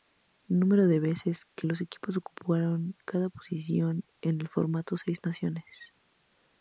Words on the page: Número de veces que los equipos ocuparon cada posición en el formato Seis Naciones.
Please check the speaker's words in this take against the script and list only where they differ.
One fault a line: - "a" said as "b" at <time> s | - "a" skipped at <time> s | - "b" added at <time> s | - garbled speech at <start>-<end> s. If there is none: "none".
none